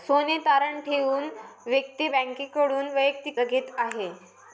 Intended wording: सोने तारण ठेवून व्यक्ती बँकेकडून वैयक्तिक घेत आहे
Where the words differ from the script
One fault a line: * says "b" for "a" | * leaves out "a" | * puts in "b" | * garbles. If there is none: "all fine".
all fine